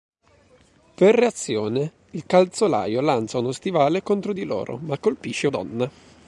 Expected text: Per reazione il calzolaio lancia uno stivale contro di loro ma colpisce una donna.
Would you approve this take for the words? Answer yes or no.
no